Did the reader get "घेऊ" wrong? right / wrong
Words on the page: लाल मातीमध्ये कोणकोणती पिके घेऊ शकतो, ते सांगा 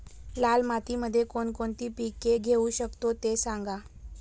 right